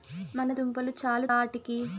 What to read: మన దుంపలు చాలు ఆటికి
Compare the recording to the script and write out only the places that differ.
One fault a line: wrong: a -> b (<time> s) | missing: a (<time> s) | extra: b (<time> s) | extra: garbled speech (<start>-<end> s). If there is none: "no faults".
no faults